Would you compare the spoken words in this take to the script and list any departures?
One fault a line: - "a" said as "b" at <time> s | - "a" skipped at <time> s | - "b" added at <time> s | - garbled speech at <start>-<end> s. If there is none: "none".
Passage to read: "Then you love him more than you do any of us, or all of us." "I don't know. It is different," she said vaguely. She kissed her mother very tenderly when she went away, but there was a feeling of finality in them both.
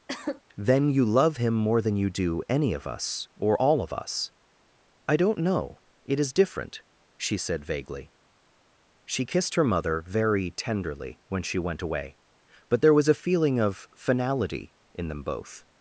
none